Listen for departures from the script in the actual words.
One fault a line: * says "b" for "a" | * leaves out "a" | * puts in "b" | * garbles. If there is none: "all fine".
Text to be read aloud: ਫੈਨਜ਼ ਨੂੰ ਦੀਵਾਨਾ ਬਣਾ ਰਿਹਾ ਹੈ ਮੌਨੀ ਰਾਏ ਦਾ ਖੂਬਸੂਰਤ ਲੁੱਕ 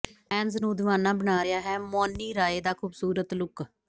all fine